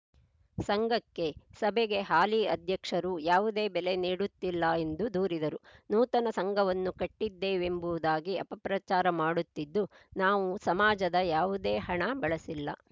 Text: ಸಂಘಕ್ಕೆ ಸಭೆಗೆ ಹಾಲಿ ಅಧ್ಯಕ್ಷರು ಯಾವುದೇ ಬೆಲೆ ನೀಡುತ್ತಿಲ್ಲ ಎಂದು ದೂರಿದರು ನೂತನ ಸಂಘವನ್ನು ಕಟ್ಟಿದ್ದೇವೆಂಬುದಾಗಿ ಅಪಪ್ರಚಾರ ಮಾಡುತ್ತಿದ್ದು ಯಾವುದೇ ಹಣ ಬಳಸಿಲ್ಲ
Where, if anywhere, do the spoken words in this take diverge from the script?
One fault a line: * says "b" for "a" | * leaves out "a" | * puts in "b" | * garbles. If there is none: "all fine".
* puts in "ನಾವು ಸಮಾಜದ"